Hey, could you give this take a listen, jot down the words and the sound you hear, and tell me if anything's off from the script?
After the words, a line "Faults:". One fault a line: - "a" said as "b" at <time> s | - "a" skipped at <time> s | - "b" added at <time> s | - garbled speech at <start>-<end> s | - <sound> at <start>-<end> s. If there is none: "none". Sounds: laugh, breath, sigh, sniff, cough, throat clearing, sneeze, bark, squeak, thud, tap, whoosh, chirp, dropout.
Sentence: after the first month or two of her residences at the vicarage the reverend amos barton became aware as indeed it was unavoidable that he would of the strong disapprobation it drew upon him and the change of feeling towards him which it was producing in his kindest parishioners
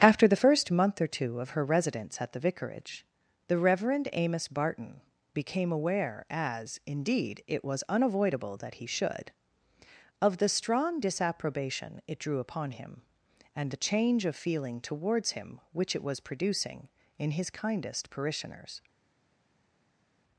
after the first month or two of her residence at the vicarage the reverend amos barton became aware as indeed it was unavoidable that he should of the strong disapprobation it drew upon him and the change of feeling towards him which it was producing in his kindest parishioners
Faults:
- "residences" said as "residence" at 1.6 s
- "would" said as "should" at 8.9 s